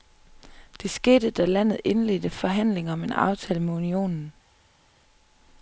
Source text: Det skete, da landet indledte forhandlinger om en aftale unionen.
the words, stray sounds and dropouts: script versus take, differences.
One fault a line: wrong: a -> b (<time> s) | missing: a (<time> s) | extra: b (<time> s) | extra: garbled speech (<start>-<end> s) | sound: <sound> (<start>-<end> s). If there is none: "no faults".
extra: med (3.6 s)